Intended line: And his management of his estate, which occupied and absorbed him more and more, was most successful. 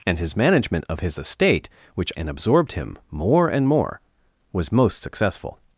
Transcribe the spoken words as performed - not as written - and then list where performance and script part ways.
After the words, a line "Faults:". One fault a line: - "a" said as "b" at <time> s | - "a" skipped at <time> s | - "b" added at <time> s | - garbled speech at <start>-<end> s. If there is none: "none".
And his management of his estate, which and absorbed him more and more, was most successful.
Faults:
- "occupied" skipped at 2.1 s